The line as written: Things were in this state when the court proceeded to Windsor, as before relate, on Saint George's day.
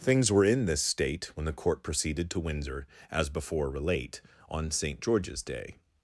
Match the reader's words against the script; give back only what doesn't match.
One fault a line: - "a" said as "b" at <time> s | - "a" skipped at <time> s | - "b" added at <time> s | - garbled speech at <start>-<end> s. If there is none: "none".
none